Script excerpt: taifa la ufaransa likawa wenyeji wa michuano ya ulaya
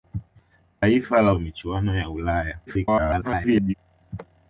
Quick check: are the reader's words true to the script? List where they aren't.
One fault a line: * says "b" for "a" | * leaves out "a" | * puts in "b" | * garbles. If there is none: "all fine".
* leaves out "ufaransa likawa wenyeji"
* garbles